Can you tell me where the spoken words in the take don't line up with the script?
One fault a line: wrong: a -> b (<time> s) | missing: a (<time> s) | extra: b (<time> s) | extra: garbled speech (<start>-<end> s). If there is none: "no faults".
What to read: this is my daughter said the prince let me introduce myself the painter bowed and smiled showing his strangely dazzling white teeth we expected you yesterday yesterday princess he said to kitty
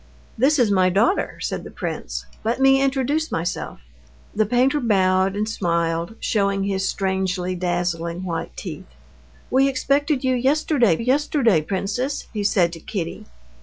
no faults